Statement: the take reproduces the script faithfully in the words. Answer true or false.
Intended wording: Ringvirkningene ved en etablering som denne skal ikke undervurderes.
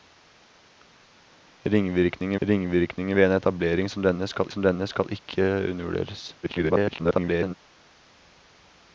false